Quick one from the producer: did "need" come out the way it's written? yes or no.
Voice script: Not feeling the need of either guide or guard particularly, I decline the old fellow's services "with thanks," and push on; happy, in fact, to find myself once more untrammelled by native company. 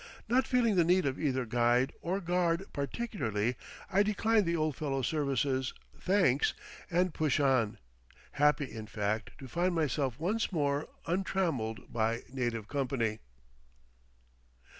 yes